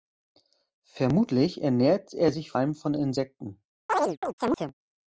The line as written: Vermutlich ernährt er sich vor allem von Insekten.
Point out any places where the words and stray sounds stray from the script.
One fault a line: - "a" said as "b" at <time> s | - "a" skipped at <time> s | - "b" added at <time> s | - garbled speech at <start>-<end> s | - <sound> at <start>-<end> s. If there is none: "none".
- "vor" skipped at 2.5 s
- chirp at 3.9-4.7 s